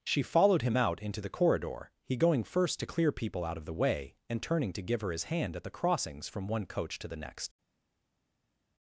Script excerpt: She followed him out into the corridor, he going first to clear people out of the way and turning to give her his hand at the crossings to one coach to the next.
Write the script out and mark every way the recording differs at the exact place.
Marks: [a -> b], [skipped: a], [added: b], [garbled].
She followed him out into the corridor, he going first to clear people out of the way and turning to give her his hand at the crossings [to -> from] one coach to the next.